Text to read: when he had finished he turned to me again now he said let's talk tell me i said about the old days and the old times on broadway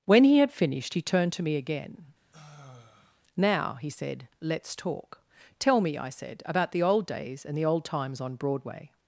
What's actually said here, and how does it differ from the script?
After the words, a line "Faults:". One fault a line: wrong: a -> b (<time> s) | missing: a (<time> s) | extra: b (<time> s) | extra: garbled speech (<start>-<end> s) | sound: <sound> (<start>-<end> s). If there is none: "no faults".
when he had finished he turned to me again now he said let's talk tell me i said about the old days and the old times on broadway
Faults:
sound: sigh (2.3-3.2 s)